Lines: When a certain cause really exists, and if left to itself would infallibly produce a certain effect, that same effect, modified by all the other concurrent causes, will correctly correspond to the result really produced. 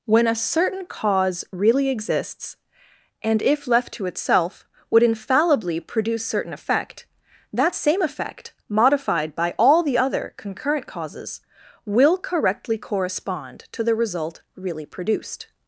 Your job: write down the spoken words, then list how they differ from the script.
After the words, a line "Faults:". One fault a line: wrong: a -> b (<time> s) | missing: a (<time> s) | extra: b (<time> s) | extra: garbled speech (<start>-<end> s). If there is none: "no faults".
When a certain cause really exists, and if left to itself would infallibly produce certain effect, that same effect, modified by all the other concurrent causes, will correctly correspond to the result really produced.
Faults:
missing: a (6.2 s)